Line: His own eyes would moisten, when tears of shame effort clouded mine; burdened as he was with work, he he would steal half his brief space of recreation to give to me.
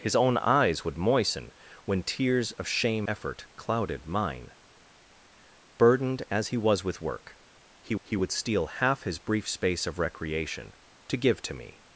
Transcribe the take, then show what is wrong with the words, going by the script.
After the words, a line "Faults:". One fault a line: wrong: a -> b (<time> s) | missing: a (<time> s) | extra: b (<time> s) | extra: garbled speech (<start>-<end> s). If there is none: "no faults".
His own eyes would moisten, when tears of shame effort clouded mine; burdened as he was with work, he he would steal half his brief space of recreation to give to me.
Faults:
no faults